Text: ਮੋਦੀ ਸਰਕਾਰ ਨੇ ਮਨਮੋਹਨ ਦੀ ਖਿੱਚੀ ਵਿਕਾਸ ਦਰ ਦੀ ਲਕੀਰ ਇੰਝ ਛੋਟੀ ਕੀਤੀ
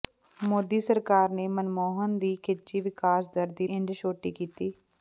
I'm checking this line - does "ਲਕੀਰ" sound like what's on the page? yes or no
no